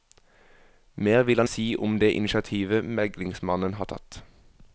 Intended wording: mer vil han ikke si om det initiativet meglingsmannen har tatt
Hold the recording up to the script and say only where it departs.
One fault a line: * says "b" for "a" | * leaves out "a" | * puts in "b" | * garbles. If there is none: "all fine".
* leaves out "ikke"